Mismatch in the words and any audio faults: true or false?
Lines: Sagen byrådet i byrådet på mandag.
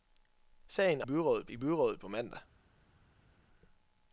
false